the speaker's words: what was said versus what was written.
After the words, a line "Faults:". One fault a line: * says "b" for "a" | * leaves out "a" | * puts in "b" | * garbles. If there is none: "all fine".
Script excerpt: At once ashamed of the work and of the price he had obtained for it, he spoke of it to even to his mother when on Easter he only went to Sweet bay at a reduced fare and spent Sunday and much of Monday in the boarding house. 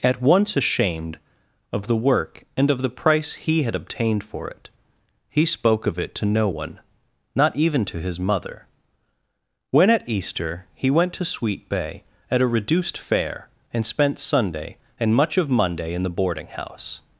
At once ashamed of the work and of the price he had obtained for it, he spoke of it to no one, not even to his mother when at Easter he went to Sweet bay at a reduced fare and spent Sunday and much of Monday in the boarding house.
Faults:
* puts in "no one not"
* says "at" for "on"
* leaves out "only"